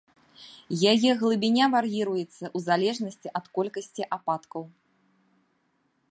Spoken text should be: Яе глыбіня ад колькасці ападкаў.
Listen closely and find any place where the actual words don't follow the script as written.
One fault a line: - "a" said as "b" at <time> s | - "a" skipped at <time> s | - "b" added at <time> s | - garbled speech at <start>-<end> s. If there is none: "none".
- "вар'іруецца ў залежнасці" added at 1.8 s